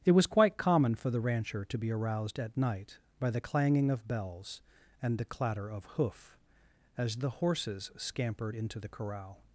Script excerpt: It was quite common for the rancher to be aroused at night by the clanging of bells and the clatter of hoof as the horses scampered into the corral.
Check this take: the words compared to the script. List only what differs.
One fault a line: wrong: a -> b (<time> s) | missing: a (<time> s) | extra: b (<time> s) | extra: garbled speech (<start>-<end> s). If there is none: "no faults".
no faults